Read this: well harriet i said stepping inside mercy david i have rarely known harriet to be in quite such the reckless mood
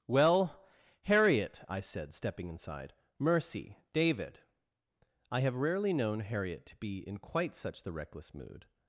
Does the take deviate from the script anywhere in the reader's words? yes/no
no